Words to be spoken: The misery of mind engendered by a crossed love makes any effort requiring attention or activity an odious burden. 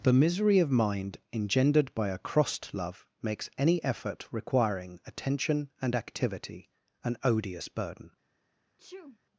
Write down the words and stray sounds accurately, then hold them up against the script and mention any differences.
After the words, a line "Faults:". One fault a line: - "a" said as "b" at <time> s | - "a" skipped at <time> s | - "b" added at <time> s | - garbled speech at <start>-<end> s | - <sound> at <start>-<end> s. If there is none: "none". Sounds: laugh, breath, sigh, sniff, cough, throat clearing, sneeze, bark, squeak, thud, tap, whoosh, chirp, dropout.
The misery of mind engendered by a crossed love makes any effort requiring attention and activity an odious burden.
Faults:
- "or" said as "and" at 5.8 s
- sneeze at 8.8-9.2 s